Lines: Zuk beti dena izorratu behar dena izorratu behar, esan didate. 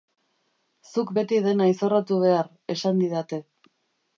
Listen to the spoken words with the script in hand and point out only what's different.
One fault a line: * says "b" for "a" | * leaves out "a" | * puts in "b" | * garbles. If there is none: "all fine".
* leaves out "dena izorratu behar"